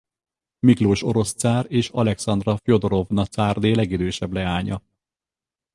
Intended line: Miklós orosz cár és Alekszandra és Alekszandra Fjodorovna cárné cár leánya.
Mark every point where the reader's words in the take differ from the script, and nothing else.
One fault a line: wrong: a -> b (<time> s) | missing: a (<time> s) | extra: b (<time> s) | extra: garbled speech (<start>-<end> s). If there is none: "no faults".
missing: és Alekszandra (2.6 s)
wrong: cár -> legidősebb (3.7 s)